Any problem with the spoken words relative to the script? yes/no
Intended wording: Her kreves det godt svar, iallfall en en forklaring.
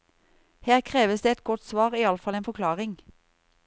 yes